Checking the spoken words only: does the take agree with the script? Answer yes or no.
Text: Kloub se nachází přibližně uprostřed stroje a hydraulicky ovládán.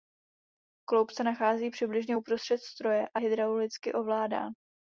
yes